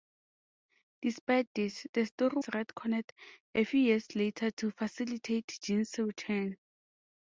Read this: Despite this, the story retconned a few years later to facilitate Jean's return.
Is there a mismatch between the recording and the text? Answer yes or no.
no